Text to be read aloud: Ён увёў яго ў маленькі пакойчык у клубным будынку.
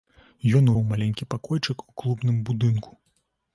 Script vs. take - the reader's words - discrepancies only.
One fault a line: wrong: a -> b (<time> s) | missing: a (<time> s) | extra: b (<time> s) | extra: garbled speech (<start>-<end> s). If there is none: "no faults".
missing: увёў яго (0.7 s)